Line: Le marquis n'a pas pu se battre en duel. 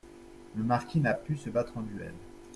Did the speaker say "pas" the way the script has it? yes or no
no